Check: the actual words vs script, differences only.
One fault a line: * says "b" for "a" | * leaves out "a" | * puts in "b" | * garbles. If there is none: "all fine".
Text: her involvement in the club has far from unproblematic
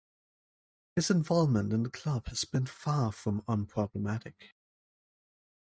* says "his" for "her"
* puts in "been"